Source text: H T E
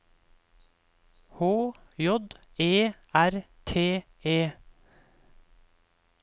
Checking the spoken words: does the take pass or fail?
fail